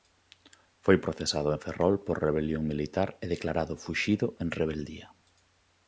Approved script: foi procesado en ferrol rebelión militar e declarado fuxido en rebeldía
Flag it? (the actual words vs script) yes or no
yes